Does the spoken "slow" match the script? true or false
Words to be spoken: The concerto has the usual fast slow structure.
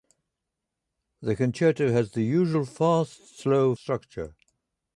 true